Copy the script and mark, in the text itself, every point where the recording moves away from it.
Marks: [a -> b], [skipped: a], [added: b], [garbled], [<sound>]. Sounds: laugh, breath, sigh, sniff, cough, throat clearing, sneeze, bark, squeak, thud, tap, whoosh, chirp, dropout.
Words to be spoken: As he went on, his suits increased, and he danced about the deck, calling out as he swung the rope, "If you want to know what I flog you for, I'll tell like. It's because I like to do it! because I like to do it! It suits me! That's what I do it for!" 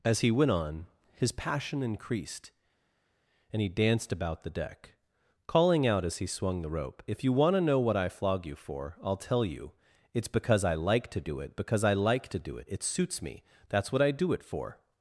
As he went on, his [suits -> passion] increased, and he danced about the deck, calling out as he swung the rope, "If you want to know what I flog you for, I'll tell [like. -> you] It's because I like to do it! because I like to do it! It suits me! That's what I do it for!"